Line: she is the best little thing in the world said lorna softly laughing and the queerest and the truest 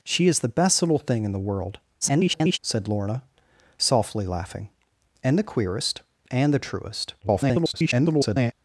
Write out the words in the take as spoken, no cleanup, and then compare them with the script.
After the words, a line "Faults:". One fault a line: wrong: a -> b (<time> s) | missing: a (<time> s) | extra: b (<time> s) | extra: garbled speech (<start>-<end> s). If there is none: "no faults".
she is the best little thing in the world [garbled] said lorna softly laughing and the queerest and the truest [garbled]
Faults:
extra: garbled speech (2.0-2.6 s)
extra: garbled speech (7.2-8.5 s)